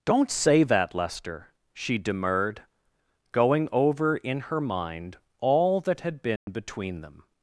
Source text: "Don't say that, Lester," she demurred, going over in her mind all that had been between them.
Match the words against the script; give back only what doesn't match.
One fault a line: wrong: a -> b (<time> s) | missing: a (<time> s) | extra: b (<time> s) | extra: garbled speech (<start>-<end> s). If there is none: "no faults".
no faults